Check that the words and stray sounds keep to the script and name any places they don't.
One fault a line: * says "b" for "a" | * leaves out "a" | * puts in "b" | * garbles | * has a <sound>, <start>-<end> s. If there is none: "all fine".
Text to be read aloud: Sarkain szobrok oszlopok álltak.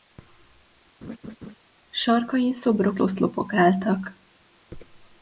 * has a laugh, 1.0-1.5 s